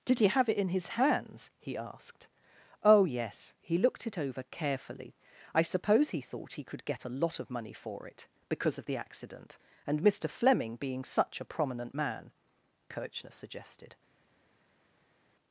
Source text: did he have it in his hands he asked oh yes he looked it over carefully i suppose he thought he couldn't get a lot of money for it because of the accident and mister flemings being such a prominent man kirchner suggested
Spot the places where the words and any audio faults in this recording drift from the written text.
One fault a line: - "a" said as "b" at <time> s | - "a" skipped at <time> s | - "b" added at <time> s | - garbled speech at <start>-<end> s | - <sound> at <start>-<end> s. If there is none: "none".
- "couldn't" said as "could" at 6.6 s
- "flemings" said as "fleming" at 10.3 s